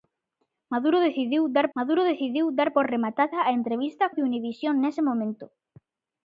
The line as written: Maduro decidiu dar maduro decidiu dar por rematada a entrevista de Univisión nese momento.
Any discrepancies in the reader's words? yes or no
no